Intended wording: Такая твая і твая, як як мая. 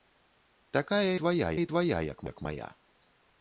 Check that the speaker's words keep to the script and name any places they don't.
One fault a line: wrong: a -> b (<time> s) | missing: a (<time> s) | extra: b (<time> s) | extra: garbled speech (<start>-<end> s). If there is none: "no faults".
no faults